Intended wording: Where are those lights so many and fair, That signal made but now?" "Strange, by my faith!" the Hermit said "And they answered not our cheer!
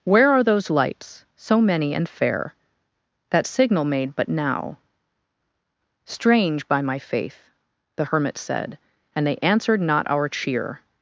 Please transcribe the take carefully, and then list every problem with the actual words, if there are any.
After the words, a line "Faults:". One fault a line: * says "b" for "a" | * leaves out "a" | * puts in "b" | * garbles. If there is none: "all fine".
Where are those lights so many and fair, That signal made but now?" "Strange, by my faith!" the Hermit said "And they answered not our cheer!
Faults:
all fine